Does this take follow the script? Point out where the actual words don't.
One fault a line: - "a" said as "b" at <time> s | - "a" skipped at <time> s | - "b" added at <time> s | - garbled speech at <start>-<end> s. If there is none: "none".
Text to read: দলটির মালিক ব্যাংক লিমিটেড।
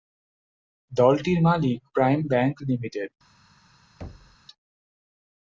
- "প্রাইম" added at 1.9 s